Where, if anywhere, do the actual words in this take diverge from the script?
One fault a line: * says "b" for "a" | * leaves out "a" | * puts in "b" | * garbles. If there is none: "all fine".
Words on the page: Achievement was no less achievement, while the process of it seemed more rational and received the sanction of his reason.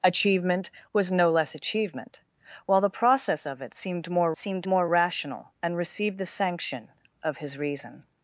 * puts in "seemed more"